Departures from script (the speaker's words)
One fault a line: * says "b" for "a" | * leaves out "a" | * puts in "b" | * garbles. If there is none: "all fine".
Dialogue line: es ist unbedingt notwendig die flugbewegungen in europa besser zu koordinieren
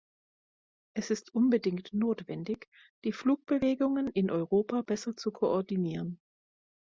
all fine